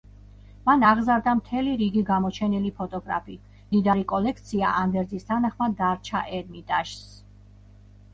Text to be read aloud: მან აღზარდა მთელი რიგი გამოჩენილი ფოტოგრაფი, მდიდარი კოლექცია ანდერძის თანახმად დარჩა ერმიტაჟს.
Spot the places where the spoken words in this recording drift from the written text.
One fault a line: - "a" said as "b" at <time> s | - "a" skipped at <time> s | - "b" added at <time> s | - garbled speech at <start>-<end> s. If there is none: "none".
none